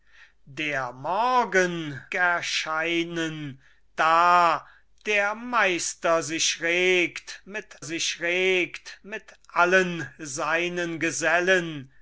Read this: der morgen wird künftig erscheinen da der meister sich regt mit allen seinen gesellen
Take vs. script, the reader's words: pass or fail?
fail